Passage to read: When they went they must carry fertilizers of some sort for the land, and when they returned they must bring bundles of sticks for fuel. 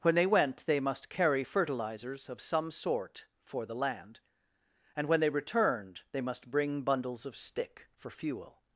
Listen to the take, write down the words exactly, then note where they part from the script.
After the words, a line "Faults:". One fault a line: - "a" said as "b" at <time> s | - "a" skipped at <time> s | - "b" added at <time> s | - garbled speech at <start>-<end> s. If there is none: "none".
When they went they must carry fertilizers of some sort for the land, and when they returned they must bring bundles of stick for fuel.
Faults:
- "sticks" said as "stick" at 7.3 s